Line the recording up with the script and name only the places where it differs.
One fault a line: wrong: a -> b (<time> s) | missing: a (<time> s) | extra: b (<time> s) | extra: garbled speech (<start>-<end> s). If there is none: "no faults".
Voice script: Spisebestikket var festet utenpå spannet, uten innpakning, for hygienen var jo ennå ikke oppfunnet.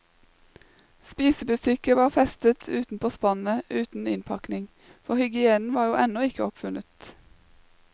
no faults